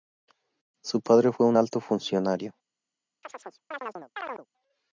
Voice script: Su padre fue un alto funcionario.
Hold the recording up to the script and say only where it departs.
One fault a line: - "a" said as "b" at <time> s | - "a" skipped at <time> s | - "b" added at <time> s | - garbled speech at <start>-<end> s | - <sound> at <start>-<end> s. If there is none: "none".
- chirp at 3.2-4.5 s